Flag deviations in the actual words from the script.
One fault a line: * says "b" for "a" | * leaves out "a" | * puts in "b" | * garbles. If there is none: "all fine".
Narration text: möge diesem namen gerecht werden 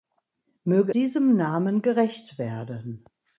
all fine